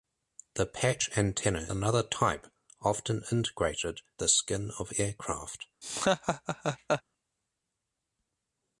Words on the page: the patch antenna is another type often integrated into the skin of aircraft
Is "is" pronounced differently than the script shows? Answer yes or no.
yes